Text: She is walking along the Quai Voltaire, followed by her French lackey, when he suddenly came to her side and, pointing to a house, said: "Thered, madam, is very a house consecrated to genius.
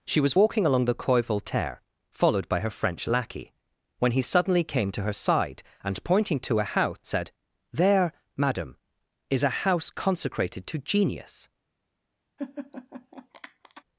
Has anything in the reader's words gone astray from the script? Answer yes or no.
yes